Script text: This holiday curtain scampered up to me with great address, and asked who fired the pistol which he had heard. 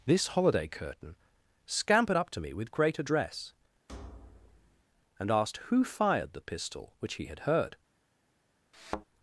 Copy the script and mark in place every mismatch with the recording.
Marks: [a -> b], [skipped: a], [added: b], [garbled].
This holiday curtain scampered up to me with great address, and asked who fired the pistol which he had heard.